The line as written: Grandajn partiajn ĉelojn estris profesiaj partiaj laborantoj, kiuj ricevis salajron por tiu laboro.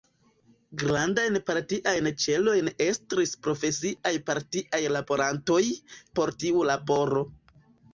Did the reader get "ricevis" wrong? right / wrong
wrong